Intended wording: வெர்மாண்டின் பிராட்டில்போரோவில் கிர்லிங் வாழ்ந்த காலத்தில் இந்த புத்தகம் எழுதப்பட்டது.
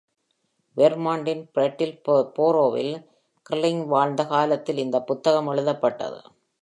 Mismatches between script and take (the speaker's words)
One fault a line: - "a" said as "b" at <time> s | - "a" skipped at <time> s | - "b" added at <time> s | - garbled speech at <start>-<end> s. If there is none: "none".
none